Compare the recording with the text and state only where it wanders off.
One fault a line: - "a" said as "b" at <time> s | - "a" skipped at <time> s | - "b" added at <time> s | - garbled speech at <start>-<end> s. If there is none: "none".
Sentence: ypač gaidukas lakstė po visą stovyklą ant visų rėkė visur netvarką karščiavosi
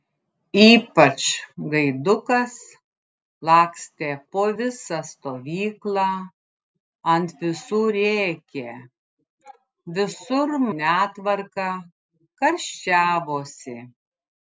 none